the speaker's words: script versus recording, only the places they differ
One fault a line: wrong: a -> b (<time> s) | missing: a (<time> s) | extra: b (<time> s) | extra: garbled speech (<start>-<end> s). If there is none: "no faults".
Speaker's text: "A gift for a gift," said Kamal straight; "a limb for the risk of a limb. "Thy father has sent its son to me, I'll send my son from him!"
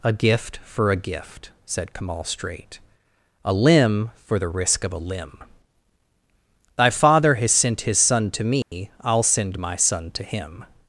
wrong: its -> his (7.8 s)
wrong: from -> to (10.1 s)